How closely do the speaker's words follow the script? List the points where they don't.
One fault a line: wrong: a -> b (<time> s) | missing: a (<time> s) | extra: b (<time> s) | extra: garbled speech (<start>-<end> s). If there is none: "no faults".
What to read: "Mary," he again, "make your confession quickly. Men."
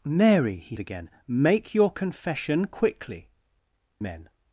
no faults